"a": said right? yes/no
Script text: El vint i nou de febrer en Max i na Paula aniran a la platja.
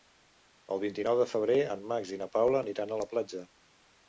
yes